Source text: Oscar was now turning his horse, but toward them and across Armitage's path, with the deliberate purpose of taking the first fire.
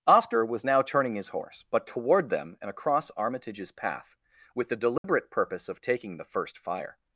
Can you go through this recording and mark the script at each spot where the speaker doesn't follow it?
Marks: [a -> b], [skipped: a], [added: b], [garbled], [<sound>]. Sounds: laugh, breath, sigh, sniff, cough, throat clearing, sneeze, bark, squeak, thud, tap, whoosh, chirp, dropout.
Oscar was now turning his horse, but toward them and across Armitage's path, with the deliberate [dropout] purpose of taking the first fire.